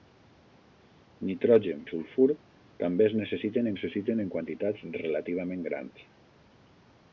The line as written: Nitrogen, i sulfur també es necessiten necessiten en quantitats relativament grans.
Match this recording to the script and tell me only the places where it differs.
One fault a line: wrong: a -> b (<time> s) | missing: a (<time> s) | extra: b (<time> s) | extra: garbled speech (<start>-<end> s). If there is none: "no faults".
no faults